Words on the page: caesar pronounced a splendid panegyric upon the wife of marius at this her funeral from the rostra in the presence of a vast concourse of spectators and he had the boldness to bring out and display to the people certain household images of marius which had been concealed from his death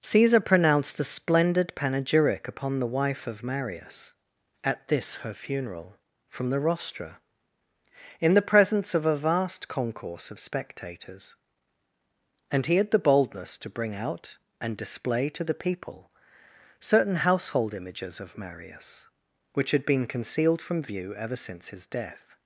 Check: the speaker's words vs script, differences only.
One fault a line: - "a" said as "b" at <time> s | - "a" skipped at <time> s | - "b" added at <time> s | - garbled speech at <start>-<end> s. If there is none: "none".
- "view ever since" added at 20.8 s